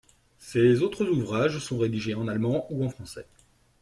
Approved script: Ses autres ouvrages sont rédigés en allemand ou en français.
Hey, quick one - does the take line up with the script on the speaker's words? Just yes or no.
yes